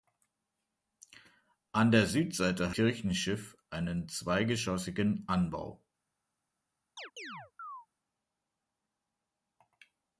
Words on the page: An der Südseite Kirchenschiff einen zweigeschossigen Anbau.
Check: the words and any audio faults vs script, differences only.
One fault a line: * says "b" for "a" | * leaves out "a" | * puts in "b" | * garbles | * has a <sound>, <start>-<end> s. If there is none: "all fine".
* has a chirp, 7.0-7.9 s